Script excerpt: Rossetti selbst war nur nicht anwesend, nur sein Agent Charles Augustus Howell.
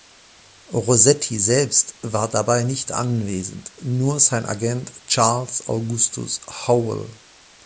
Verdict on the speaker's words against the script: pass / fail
fail